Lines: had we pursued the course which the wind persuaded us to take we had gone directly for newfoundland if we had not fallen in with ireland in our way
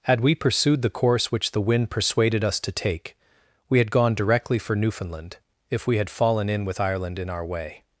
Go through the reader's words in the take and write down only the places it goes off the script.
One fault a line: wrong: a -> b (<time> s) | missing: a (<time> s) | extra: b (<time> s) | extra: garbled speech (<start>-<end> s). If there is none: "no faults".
missing: not (6.1 s)